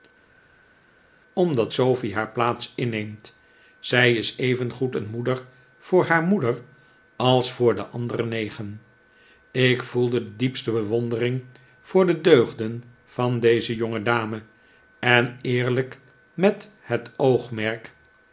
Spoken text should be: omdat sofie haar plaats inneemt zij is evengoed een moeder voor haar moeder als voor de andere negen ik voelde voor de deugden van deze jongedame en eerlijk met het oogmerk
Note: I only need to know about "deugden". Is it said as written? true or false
true